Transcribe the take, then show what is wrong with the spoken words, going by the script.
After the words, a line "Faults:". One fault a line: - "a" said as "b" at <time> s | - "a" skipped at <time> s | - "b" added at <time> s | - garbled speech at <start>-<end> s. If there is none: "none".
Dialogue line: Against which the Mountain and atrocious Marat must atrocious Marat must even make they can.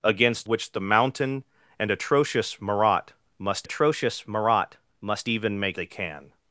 Against which the Mountain and atrocious Marat must atrocious Marat must even make they can.
Faults:
none